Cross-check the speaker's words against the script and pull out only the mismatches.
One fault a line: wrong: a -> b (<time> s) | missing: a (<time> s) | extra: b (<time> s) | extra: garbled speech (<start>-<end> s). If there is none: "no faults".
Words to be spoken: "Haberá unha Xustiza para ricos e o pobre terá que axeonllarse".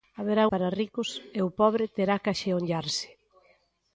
missing: unha Xustiza (0.4 s)